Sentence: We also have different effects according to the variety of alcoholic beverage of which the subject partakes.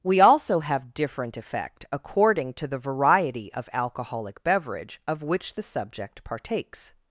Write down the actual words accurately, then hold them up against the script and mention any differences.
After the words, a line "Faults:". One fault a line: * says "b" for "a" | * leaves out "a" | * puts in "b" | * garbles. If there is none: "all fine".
We also have different effect according to the variety of alcoholic beverage of which the subject partakes.
Faults:
* says "effect" for "effects"